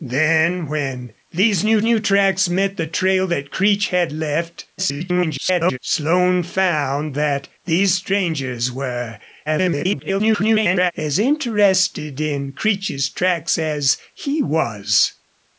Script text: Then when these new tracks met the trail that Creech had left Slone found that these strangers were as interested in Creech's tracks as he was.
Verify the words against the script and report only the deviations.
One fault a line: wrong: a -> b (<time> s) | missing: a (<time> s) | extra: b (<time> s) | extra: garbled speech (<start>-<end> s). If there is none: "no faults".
extra: new (1.8 s)
extra: garbled speech (4.8-5.8 s)
extra: garbled speech (9.5-10.9 s)